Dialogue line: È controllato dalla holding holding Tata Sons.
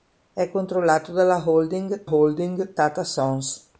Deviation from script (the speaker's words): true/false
false